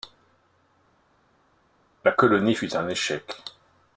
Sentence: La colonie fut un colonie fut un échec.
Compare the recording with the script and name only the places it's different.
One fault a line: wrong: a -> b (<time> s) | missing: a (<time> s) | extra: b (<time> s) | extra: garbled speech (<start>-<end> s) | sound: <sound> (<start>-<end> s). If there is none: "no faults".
missing: colonie fut un (2.9 s)